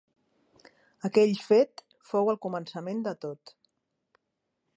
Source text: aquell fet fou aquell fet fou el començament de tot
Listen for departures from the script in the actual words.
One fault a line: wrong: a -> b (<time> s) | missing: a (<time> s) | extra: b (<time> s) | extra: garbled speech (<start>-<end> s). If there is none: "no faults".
missing: aquell fet fou (2.3 s)